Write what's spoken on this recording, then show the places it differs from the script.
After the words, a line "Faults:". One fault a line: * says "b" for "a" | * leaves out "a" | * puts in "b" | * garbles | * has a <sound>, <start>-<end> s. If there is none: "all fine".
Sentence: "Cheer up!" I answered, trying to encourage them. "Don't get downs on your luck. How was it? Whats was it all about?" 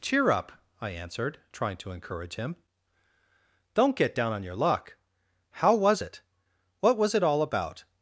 "Cheer up!" I answered, trying to encourage him. "Don't get down on your luck. How was it? What was it all about?"
Faults:
* says "him" for "them"
* says "down" for "downs"
* says "What" for "Whats"